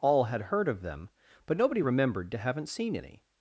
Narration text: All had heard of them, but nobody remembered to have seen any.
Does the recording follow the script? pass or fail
fail